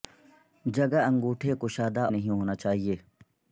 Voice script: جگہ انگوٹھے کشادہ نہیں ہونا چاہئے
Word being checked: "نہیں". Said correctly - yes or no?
yes